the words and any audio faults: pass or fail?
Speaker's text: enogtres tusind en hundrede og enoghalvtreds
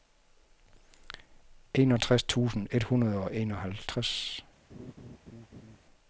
fail